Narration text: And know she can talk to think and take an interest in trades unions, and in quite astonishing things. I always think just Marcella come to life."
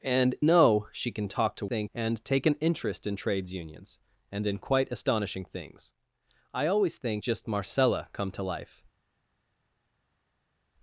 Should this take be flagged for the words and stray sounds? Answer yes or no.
no